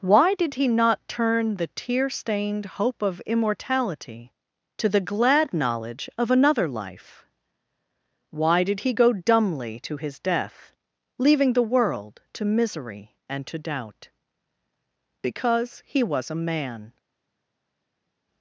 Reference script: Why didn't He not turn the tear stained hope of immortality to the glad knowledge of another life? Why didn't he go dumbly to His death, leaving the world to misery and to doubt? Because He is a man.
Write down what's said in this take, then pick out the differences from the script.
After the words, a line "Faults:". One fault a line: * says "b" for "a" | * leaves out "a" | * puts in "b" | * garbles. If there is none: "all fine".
Why did He not turn the tear stained hope of immortality to the glad knowledge of another life? Why did he go dumbly to His death, leaving the world to misery and to doubt? Because He was a man.
Faults:
* says "did" for "didn't"
* says "did" for "didn't"
* says "was" for "is"